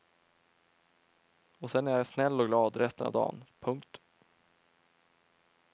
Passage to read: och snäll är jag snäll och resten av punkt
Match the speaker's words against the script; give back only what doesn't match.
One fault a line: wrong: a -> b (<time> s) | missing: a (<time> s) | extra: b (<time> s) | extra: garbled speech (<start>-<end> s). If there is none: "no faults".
wrong: snäll -> sen (1.7 s)
extra: glad (2.5 s)
extra: dan (3.1 s)